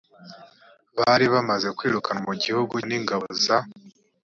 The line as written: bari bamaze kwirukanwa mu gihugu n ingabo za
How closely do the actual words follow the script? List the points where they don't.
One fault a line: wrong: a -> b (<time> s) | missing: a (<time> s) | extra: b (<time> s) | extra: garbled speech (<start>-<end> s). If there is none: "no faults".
no faults